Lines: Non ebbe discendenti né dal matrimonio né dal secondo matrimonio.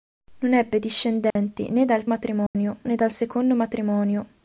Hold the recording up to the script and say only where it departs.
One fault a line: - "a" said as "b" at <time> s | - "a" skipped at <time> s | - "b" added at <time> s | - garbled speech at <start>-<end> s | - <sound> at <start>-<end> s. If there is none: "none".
- dropout at 1.3-1.4 s
- dropout at 2.5-2.5 s